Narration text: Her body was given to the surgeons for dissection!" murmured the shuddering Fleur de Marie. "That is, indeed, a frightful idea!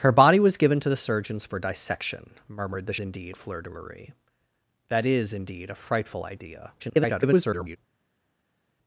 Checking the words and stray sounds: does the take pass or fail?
fail